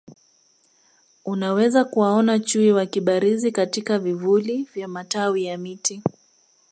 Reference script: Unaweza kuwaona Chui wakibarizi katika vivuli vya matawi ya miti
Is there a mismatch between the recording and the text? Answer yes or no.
no